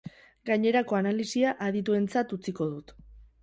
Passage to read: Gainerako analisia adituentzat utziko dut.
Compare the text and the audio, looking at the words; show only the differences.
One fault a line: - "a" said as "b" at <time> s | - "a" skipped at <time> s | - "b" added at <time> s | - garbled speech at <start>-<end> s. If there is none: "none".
none